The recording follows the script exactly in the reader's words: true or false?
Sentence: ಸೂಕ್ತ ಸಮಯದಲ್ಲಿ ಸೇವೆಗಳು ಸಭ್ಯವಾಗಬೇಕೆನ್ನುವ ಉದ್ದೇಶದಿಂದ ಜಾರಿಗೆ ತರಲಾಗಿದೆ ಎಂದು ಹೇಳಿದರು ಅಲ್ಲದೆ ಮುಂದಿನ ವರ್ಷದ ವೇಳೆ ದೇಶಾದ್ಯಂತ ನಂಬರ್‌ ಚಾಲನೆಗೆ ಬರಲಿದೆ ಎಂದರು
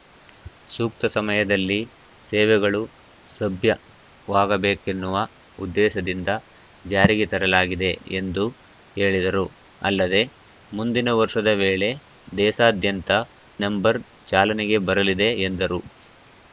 true